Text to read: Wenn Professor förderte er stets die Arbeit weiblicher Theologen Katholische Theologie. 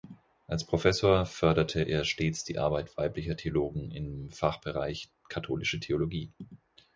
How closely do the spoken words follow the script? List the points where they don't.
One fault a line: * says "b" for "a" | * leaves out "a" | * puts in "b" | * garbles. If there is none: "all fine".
* says "Als" for "Wenn"
* puts in "im Fachbereich"